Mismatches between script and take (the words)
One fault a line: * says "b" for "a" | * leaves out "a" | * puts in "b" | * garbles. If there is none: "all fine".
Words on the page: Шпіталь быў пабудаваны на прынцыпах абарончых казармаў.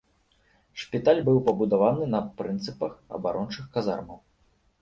all fine